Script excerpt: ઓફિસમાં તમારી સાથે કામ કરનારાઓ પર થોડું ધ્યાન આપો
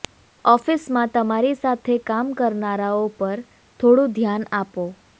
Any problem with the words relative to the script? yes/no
no